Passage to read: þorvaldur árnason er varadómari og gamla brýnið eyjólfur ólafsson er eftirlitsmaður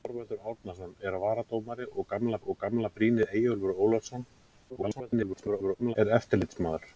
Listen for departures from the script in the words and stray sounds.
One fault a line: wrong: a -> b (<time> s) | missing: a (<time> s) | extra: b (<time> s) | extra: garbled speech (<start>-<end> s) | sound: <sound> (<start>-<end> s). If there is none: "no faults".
extra: og gamla (2.4 s)
extra: garbled speech (4.7-6.0 s)